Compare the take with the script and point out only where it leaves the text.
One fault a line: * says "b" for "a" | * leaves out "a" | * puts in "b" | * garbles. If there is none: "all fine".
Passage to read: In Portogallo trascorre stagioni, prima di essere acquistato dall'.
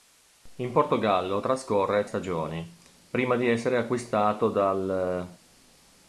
all fine